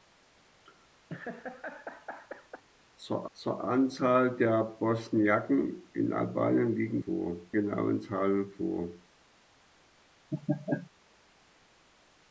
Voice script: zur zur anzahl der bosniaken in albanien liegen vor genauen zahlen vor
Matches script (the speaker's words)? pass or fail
pass